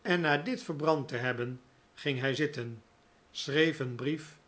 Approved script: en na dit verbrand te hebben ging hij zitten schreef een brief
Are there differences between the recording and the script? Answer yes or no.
no